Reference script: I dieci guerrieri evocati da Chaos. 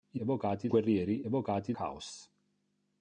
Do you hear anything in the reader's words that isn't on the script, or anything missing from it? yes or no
yes